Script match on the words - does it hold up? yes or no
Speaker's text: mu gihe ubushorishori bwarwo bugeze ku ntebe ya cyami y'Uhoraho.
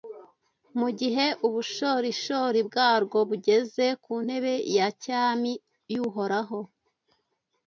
yes